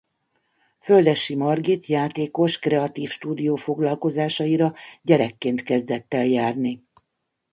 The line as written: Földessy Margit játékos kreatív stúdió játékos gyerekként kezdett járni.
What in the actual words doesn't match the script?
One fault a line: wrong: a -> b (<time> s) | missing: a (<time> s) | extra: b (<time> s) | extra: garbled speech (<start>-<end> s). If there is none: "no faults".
wrong: játékos -> foglalkozásaira (3.5 s)
extra: el (6.1 s)